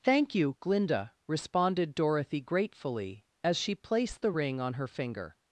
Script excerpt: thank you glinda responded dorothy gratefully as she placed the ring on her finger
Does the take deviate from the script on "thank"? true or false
false